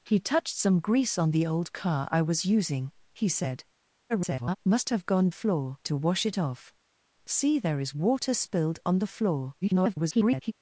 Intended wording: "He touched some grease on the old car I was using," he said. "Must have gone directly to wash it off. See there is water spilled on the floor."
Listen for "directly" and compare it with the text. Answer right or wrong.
wrong